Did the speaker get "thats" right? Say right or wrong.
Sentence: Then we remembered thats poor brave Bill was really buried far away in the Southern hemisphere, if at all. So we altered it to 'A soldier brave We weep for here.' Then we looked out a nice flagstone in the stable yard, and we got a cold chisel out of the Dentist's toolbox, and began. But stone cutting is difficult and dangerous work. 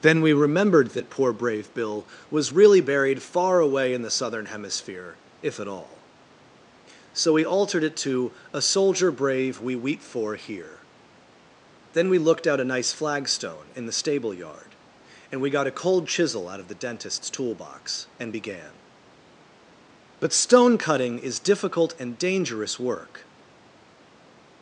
wrong